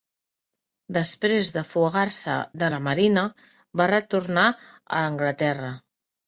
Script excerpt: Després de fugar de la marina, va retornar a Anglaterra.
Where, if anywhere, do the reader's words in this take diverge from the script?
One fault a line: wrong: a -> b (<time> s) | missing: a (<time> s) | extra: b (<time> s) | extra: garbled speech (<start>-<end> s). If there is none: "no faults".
extra: se (2.2 s)